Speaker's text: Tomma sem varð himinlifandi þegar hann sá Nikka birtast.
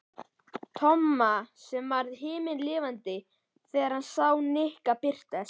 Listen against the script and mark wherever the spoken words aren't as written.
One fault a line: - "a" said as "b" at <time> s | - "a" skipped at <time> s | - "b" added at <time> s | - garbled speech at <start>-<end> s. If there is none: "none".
none